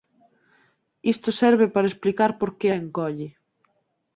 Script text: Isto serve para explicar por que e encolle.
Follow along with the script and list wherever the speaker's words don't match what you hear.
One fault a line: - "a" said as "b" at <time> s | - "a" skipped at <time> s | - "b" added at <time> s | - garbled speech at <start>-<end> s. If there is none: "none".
none